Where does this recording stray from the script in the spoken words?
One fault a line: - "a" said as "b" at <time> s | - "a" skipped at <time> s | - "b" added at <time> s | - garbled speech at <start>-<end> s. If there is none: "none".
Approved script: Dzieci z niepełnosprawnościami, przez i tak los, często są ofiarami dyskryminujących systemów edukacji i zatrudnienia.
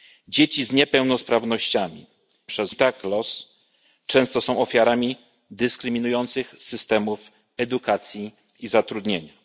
none